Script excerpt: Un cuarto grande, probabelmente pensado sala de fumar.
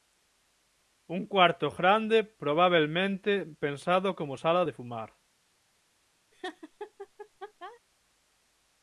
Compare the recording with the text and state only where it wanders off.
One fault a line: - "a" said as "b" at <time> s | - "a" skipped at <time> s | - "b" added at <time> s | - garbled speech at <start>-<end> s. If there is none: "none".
- "como" added at 4.2 s